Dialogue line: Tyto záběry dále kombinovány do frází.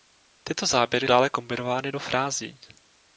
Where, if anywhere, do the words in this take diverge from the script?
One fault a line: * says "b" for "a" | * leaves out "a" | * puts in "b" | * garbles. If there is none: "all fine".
all fine